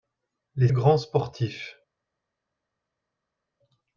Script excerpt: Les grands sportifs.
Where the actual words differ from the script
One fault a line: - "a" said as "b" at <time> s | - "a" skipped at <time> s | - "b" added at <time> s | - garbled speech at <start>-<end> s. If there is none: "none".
none